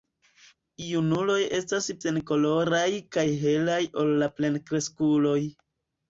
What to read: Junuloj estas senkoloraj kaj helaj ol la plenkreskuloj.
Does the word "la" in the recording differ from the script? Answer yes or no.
no